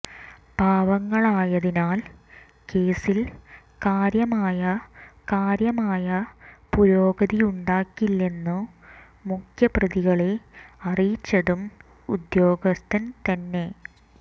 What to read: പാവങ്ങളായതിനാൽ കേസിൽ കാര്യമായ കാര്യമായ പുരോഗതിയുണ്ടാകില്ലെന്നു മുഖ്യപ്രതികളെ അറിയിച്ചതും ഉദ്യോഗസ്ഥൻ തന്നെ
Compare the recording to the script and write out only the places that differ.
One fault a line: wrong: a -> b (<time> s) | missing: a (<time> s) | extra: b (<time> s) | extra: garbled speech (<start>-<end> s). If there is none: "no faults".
no faults